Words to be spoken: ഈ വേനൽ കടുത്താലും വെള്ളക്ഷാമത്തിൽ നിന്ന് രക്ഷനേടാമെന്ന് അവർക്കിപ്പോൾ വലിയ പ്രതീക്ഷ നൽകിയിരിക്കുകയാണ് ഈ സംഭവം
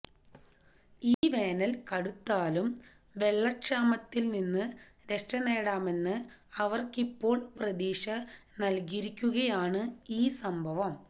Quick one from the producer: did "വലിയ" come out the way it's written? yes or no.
no